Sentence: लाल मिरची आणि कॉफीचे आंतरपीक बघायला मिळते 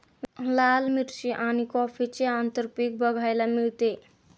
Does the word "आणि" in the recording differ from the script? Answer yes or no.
no